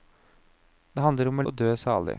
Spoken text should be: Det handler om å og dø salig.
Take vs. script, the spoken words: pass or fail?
pass